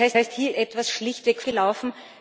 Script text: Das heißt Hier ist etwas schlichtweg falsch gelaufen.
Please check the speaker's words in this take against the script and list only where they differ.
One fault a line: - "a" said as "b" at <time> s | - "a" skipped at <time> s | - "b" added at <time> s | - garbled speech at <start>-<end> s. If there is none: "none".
- "das" added at 0.2 s
- "ist" skipped at 0.5 s
- "falsch" skipped at 1.4 s